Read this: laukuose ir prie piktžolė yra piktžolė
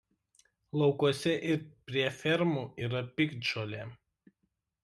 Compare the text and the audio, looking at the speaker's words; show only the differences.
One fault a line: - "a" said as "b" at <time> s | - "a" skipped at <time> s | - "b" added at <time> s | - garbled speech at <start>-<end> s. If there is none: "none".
- "piktžolė" said as "fermų" at 2.2 s